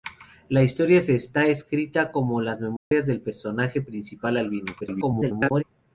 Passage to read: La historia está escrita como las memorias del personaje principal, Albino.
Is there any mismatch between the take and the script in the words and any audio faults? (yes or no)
yes